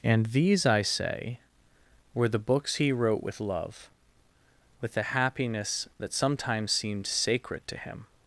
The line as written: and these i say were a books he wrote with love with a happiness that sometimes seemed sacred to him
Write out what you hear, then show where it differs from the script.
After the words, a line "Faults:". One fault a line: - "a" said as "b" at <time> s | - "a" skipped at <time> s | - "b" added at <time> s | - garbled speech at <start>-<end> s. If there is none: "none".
and these i say were the books he wrote with love with a happiness that sometimes seemed sacred to him
Faults:
- "a" said as "the" at 2.3 s